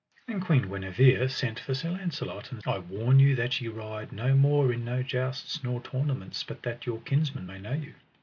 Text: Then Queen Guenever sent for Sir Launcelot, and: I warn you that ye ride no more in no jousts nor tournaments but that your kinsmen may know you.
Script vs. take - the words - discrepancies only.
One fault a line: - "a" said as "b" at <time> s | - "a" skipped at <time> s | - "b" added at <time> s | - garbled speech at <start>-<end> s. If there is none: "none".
none